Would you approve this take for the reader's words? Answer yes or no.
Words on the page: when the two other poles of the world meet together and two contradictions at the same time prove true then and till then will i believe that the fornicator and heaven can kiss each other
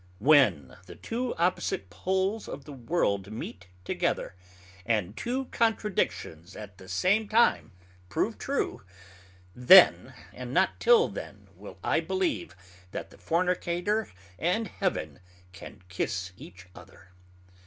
no